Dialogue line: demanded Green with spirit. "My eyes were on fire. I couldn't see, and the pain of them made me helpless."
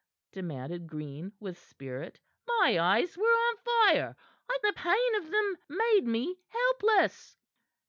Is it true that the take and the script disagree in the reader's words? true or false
true